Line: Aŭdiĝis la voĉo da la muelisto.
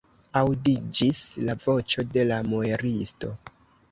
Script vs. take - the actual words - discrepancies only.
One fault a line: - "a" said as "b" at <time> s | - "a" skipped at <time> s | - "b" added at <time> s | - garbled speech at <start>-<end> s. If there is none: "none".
- "da" said as "de" at 2.1 s